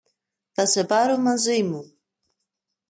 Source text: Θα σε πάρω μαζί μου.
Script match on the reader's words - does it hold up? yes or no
yes